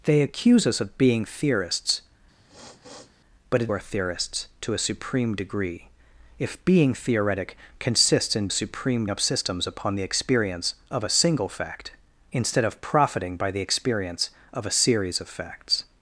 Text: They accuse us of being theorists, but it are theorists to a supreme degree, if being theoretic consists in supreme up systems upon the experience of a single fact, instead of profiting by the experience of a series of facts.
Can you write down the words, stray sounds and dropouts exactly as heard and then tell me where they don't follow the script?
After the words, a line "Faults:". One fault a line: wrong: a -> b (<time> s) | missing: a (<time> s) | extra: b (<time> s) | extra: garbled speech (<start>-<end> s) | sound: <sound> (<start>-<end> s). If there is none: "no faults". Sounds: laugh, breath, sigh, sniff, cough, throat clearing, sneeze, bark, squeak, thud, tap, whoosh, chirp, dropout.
They accuse us of being theorists, but it are theorists to a supreme degree, if being theoretic consists in supreme up systems upon the experience of a single fact, instead of profiting by the experience of a series of facts.
Faults:
sound: sniff (2.4-3.1 s)